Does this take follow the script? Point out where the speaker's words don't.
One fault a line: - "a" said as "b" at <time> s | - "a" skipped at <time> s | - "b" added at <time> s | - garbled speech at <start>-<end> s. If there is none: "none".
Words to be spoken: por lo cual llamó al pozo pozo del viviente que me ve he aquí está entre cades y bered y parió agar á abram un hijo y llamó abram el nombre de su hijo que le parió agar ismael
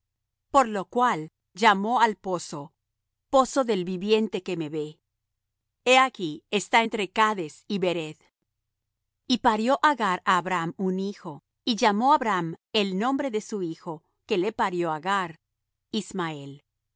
none